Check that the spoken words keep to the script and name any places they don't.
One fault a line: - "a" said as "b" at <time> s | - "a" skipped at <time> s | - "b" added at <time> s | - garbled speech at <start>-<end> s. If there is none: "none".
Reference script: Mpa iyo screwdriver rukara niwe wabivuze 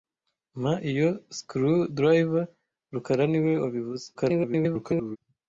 - garbled speech at 4.1-5.2 s